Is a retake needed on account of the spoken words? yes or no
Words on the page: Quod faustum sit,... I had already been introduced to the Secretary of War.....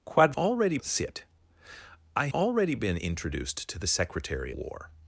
yes